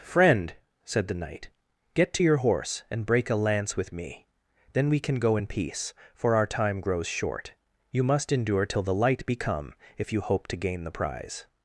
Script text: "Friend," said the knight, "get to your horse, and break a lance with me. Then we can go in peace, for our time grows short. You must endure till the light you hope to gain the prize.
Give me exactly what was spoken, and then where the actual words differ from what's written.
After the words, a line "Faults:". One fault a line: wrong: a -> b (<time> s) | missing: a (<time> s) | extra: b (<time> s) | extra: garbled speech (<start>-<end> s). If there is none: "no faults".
"Friend," said the knight, "get to your horse, and break a lance with me. Then we can go in peace, for our time grows short. You must endure till the light be come if you hope to gain the prize.
Faults:
extra: be come if (9.3 s)